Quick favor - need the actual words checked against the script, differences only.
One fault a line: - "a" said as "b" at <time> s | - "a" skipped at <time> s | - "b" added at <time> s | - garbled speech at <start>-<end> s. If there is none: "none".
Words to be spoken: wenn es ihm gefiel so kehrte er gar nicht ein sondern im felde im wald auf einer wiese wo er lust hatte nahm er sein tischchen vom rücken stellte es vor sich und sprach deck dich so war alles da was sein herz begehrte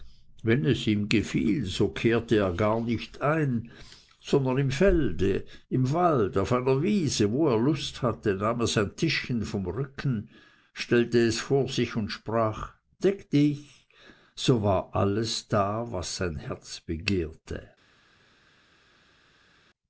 none